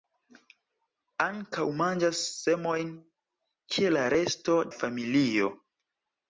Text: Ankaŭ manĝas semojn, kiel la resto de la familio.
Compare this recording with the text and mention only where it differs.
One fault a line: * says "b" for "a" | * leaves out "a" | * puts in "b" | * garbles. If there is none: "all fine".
* leaves out "de"